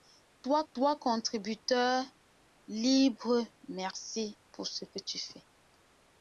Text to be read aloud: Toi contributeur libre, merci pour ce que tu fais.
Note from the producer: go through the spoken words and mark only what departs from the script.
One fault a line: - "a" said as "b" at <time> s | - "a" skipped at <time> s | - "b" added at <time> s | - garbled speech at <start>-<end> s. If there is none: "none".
- "toi" added at 0.7 s